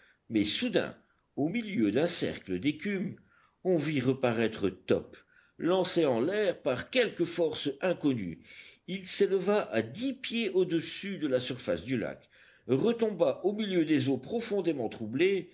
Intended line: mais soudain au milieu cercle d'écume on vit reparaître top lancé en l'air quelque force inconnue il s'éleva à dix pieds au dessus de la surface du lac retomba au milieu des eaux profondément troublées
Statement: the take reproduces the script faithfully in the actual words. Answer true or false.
false